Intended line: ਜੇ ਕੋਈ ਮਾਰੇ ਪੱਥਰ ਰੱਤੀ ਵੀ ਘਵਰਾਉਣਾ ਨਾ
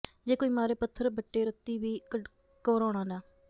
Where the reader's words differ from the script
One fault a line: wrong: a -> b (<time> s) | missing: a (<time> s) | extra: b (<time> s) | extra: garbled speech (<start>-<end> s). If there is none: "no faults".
extra: ਬੱਟੇ (1.1 s)